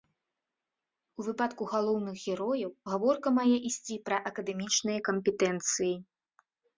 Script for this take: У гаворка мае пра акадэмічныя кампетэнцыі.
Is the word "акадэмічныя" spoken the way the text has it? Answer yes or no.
yes